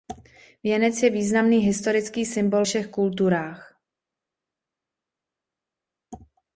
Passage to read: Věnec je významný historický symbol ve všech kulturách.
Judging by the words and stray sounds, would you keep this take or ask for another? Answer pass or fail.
fail